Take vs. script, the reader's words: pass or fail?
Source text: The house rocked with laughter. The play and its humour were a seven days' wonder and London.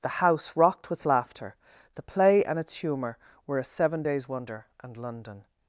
pass